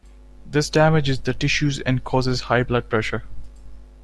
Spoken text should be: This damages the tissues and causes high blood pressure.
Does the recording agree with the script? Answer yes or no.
yes